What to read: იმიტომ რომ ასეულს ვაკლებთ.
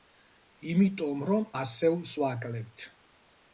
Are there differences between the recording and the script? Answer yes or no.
no